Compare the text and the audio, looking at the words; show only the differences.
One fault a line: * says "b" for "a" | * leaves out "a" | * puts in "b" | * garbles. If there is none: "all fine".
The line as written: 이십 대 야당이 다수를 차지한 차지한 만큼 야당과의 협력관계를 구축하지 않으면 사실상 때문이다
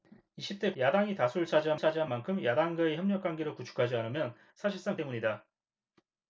all fine